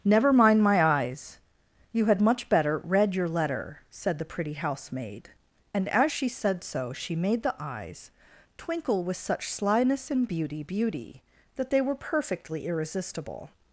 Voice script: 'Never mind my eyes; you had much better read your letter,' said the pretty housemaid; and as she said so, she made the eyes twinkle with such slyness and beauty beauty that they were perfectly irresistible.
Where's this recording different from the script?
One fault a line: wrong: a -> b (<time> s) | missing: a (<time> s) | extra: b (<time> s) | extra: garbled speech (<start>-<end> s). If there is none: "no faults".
no faults